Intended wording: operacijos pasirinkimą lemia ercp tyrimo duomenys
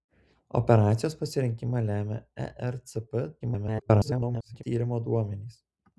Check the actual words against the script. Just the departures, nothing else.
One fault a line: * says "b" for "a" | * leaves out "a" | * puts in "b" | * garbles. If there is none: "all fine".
* garbles